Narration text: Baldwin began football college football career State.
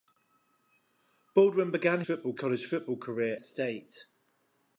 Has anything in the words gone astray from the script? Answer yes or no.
no